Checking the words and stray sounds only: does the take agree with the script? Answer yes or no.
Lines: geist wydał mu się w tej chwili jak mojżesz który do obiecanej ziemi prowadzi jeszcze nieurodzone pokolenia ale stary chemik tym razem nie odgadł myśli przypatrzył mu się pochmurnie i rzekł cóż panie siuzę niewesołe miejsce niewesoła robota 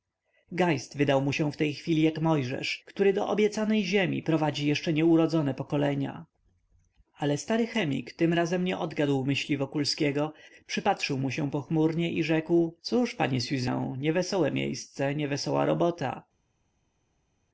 no